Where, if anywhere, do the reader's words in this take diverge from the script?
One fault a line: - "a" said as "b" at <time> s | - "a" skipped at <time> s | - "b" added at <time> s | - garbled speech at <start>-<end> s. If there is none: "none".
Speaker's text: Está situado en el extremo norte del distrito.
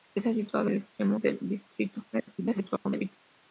- "en" skipped at 0.7 s
- "norte" skipped at 1.2 s
- garbled speech at 2.1-3.2 s